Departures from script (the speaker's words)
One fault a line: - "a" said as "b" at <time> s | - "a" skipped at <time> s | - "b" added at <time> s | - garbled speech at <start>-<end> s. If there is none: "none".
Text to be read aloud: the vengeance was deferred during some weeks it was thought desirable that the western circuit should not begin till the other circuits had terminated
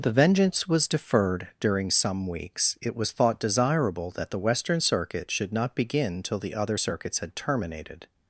none